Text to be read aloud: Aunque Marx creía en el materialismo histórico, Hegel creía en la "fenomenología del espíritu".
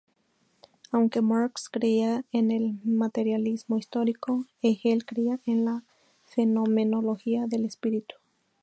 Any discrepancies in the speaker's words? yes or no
no